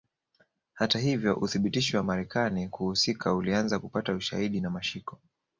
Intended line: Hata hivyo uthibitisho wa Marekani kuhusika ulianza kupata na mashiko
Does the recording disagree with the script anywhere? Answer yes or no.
yes